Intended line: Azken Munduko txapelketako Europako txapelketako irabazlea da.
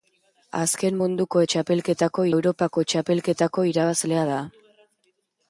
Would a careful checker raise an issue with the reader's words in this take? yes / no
no